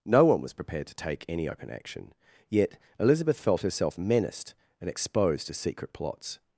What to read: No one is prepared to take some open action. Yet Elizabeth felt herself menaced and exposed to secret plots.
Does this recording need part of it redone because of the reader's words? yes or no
yes